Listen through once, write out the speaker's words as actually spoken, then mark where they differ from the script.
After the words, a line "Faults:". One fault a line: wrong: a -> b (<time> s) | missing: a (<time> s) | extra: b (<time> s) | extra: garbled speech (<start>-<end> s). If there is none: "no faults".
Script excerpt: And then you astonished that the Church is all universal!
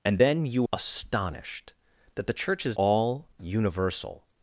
And then you astonished that the Church is all universal!
Faults:
no faults